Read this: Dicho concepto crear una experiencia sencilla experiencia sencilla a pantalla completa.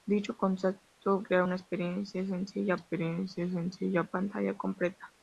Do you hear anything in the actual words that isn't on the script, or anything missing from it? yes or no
no